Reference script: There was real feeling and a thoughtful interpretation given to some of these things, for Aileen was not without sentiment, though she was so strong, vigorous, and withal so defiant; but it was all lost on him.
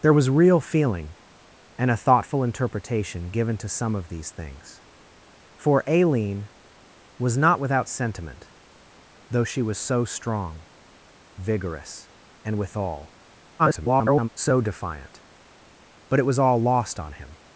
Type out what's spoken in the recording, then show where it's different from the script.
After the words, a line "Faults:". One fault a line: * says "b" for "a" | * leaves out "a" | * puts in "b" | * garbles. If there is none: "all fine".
There was real feeling and a thoughtful interpretation given to some of these things, for Aileen was not without sentiment, though she was so strong, vigorous, and withal [garbled] so defiant; but it was all lost on him.
Faults:
* garbles